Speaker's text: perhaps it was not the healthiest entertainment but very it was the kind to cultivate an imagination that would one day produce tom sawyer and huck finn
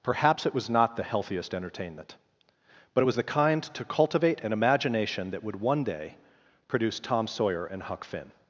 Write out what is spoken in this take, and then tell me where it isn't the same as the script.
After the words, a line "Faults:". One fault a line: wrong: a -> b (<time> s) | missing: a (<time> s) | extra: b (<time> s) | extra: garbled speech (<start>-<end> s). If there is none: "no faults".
perhaps it was not the healthiest entertainment but it was the kind to cultivate an imagination that would one day produce tom sawyer and huck finn
Faults:
missing: very (3.0 s)